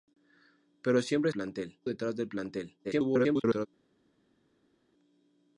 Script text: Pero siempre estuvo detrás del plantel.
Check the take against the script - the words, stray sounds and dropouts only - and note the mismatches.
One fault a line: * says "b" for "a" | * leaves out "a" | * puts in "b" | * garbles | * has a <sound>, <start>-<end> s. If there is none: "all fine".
* says "plantel" for "estuvo"
* garbles